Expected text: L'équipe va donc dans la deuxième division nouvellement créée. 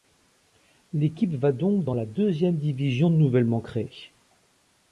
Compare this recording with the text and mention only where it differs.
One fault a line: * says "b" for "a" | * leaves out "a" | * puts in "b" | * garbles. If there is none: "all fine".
all fine